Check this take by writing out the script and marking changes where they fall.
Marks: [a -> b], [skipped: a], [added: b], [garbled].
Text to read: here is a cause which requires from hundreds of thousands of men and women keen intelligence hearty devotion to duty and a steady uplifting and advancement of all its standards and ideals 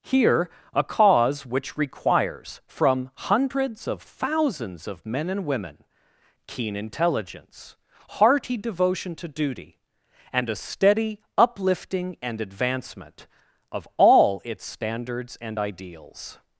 here [skipped: is] a cause which requires from hundreds of thousands of men and women keen intelligence hearty devotion to duty and a steady uplifting and advancement of all its standards and ideals